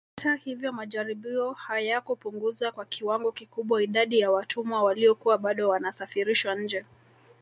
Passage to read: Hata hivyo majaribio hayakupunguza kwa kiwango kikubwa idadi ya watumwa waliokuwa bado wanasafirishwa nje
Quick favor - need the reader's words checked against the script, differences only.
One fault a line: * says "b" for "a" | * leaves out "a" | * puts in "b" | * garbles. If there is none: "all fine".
all fine